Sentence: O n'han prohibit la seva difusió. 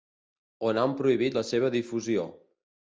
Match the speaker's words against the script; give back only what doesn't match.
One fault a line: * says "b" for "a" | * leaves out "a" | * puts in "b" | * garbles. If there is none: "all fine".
all fine